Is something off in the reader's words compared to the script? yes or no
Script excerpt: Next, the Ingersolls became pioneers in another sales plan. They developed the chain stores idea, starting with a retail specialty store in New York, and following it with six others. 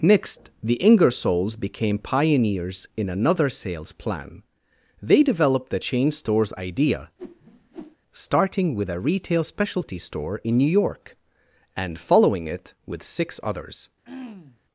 no